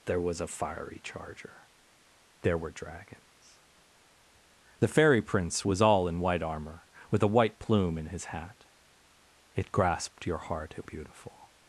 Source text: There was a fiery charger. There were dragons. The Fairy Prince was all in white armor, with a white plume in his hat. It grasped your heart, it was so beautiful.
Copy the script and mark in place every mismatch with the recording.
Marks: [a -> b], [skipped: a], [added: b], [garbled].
There was a fiery charger. There were dragons. The Fairy Prince was all in white armor, with a white plume in his hat. It grasped your heart, it [skipped: was so] beautiful.